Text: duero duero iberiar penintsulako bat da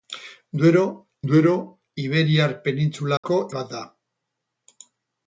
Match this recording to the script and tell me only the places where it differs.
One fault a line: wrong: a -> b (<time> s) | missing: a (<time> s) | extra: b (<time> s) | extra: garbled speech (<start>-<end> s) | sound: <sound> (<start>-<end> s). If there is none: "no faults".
sound: dropout (3.2-3.2 s)